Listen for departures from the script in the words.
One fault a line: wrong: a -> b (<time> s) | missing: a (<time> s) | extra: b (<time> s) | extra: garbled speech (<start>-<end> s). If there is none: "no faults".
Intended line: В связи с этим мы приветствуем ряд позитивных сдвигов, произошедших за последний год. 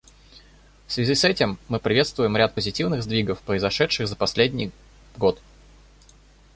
no faults